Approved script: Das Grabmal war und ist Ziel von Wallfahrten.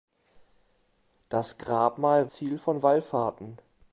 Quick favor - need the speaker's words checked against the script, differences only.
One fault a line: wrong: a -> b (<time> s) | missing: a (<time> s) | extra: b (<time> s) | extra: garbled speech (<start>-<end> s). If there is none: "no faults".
missing: war und ist (2.3 s)